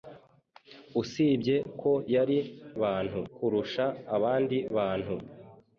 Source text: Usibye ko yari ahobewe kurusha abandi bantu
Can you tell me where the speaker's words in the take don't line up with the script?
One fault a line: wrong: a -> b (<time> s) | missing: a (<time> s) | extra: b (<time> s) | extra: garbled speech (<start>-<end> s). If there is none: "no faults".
wrong: ahobewe -> bantu (2.8 s)